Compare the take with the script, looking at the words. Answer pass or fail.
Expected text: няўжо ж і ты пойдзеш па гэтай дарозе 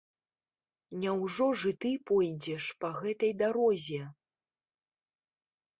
pass